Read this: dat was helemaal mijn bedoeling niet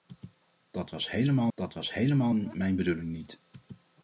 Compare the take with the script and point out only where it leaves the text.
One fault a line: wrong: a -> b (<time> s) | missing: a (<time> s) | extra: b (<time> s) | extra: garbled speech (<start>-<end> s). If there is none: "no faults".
extra: dat was helemaal (1.5 s)